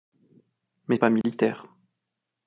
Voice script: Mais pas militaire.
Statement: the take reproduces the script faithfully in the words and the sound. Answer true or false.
false